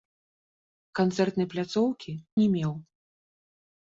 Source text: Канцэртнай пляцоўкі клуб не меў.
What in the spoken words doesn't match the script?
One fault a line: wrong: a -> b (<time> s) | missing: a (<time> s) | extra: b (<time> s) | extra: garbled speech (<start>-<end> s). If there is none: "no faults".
missing: клуб (2.1 s)